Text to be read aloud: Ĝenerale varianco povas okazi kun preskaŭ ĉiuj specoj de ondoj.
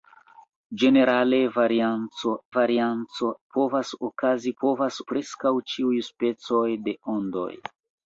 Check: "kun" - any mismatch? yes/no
yes